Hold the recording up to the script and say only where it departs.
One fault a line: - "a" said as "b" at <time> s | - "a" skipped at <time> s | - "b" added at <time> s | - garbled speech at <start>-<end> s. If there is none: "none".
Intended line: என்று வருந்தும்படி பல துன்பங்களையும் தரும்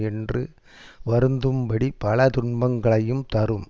none